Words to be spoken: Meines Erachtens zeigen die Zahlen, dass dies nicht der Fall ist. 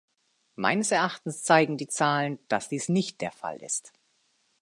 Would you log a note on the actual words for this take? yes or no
no